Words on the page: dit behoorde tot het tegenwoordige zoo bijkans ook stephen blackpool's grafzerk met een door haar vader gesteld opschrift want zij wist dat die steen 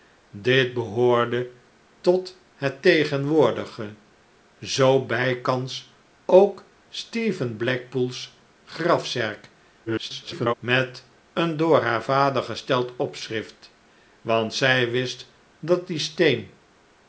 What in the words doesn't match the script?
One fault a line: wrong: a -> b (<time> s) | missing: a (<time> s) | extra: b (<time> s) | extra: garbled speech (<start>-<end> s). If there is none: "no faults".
extra: garbled speech (9.9-10.5 s)